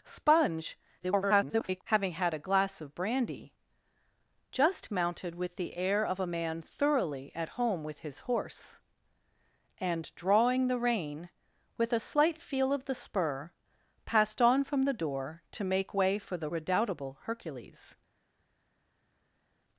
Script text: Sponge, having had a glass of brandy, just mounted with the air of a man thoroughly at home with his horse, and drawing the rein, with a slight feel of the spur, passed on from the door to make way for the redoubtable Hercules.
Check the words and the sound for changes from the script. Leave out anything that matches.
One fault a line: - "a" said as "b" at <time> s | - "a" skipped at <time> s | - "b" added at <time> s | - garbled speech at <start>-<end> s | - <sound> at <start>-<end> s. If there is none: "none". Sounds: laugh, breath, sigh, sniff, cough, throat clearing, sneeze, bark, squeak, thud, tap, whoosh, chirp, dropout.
- garbled speech at 1.0-1.8 s